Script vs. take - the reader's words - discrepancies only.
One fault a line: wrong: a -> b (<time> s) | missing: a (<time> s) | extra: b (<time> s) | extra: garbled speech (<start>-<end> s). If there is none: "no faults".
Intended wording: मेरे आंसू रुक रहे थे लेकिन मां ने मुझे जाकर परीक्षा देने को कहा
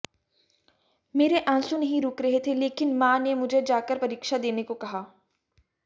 extra: नहीं (1.8 s)